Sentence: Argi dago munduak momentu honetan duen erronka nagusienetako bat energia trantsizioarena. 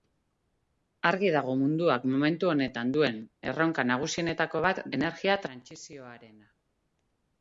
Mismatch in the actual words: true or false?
false